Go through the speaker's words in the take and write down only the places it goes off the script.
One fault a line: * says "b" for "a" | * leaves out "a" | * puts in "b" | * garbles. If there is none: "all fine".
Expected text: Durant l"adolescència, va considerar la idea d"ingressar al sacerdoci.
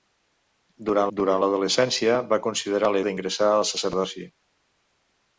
* puts in "durant"
* leaves out "idea"